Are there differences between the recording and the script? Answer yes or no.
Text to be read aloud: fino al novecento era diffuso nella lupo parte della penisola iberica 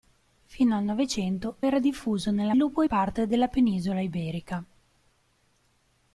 no